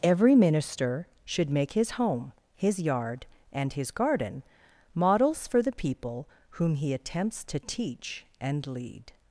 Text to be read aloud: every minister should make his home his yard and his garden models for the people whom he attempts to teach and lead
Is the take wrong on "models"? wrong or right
right